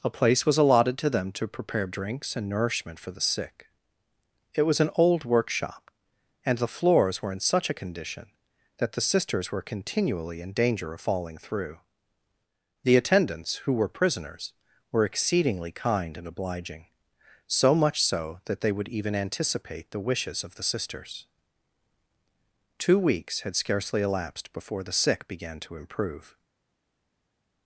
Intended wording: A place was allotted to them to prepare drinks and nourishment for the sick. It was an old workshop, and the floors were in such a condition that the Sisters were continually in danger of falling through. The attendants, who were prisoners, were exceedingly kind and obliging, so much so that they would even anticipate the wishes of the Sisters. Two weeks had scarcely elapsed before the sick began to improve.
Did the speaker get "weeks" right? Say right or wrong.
right